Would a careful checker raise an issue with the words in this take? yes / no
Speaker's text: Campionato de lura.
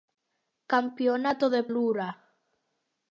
no